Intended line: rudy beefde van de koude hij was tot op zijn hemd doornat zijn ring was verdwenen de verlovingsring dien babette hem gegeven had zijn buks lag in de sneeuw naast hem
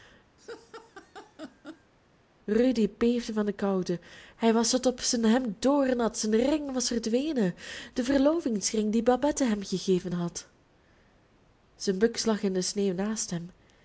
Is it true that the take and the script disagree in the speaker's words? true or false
false